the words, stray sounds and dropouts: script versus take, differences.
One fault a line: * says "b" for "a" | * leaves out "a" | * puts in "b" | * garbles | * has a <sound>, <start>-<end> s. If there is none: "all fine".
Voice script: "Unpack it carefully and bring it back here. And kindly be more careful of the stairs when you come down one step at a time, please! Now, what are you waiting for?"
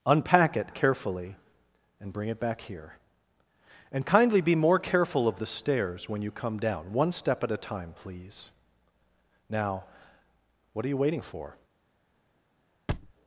* has a thud, 12.9-13.1 s